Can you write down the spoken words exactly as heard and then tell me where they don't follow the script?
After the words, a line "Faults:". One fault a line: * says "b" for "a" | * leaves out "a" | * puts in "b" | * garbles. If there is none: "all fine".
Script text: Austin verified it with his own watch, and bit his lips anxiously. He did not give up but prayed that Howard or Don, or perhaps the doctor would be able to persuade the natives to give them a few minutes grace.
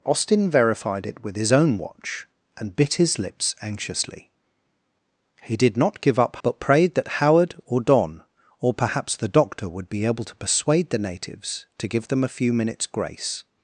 Austin verified it with his own watch, and bit his lips anxiously. He did not give up but prayed that Howard or Don, or perhaps the doctor would be able to persuade the natives to give them a few minutes grace.
Faults:
all fine